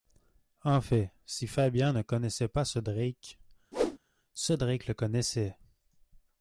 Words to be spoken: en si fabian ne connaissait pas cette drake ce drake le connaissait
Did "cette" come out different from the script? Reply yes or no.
yes